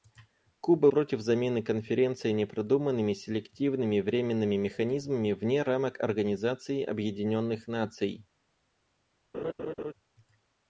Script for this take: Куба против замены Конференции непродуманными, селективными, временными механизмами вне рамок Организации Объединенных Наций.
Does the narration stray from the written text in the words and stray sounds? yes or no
yes